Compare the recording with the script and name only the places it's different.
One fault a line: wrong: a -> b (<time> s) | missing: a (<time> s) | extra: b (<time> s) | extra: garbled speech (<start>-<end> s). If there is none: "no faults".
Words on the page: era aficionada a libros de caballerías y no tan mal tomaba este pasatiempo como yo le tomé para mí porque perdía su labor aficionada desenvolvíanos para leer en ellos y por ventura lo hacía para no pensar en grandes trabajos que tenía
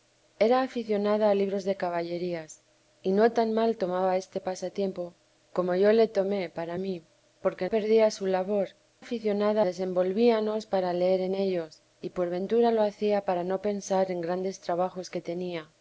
no faults